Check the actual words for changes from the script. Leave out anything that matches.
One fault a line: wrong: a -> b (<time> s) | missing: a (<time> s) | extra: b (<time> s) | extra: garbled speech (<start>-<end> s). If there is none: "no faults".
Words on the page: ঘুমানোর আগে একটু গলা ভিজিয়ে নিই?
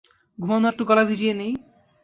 missing: আগে (0.7 s)